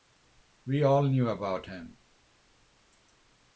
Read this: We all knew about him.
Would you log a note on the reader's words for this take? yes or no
no